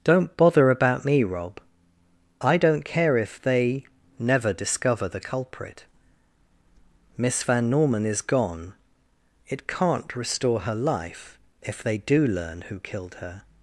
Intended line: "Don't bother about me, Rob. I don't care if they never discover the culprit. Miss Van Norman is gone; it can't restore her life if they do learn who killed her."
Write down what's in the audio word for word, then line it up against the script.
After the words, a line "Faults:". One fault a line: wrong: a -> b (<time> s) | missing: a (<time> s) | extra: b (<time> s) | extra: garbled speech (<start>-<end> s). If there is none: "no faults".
"Don't bother about me, Rob. I don't care if they never discover the culprit. Miss Van Norman is gone; it can't restore her life if they do learn who killed her."
Faults:
no faults